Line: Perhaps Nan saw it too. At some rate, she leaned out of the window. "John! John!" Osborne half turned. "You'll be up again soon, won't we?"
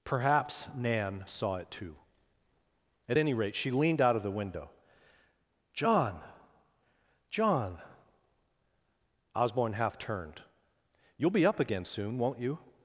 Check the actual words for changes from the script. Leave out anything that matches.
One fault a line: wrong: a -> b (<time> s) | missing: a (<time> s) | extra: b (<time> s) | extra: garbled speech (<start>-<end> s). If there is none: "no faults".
wrong: some -> any (3.2 s)
wrong: we -> you (12.4 s)